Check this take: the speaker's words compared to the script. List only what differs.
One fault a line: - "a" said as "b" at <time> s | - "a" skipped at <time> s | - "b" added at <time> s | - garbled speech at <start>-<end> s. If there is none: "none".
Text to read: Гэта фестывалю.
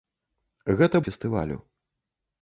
none